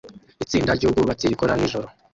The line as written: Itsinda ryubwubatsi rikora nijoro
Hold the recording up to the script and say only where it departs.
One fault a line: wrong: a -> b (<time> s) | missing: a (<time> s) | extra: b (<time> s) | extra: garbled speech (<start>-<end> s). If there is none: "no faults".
no faults